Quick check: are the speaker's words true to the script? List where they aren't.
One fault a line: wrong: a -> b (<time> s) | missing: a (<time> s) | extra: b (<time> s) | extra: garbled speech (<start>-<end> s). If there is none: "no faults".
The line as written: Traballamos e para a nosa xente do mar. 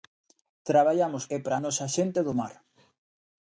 no faults